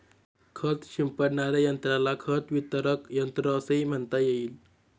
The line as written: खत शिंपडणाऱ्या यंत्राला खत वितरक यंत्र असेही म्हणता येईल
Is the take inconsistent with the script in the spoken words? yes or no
no